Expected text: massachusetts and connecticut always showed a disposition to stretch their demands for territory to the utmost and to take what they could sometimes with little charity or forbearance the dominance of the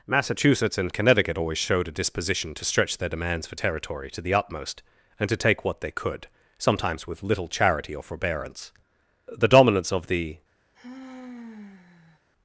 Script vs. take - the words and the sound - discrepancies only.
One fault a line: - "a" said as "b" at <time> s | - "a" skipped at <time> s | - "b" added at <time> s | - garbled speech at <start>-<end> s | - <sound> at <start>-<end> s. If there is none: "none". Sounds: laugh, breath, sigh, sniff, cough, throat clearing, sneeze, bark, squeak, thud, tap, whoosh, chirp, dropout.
- sigh at 10.7-12.2 s